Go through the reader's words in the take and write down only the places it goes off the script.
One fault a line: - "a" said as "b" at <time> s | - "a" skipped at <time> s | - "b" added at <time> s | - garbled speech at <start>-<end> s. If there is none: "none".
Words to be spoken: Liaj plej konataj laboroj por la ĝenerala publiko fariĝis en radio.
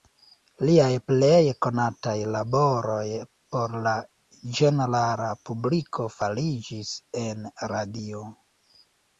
none